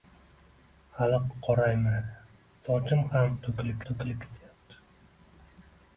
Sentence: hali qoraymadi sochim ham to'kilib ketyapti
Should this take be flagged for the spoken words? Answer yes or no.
yes